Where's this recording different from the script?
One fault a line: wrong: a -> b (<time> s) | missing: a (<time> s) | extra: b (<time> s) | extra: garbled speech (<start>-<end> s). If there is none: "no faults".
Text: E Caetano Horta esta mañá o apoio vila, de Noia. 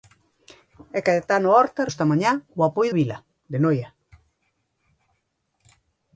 no faults